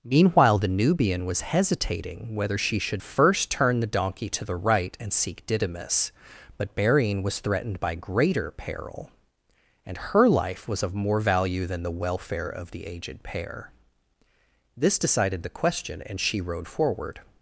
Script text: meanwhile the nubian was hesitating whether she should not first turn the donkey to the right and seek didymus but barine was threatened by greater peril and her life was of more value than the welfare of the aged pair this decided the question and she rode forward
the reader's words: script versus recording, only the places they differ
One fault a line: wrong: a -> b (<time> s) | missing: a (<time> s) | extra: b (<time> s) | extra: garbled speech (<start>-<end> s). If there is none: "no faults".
missing: not (3.0 s)